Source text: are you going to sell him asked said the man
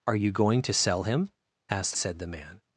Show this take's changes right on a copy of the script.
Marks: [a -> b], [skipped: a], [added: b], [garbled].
are you going to sell him asked said the man